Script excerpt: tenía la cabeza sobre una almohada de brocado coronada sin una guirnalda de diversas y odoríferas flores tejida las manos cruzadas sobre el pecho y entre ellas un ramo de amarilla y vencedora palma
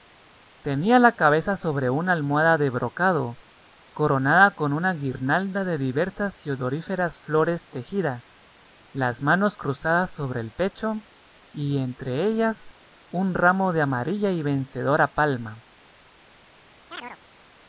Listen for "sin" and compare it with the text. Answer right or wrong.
wrong